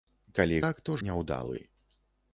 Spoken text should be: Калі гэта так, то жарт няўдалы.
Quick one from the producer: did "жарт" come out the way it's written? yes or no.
no